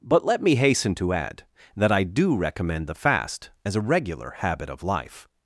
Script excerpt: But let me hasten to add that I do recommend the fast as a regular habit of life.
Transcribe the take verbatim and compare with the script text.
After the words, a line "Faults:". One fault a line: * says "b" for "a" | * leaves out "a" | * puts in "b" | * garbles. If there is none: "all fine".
But let me hasten to add that I do recommend the fast as a regular habit of life.
Faults:
all fine